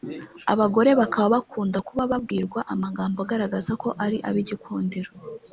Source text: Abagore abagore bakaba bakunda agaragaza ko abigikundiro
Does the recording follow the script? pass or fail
fail